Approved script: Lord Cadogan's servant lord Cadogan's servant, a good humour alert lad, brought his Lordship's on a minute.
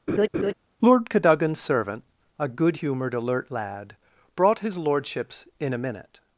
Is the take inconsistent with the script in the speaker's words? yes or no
yes